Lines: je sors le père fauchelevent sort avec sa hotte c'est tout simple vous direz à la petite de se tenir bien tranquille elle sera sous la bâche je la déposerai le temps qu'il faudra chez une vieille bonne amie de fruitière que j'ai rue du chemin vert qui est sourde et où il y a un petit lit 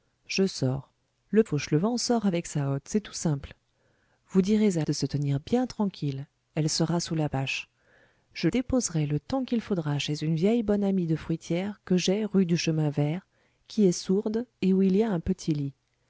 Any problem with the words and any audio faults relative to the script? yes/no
yes